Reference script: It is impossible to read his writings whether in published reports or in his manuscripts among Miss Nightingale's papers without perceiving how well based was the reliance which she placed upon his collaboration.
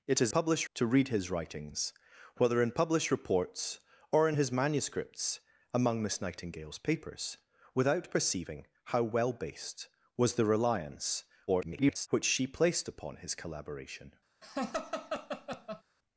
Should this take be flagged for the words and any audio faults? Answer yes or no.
yes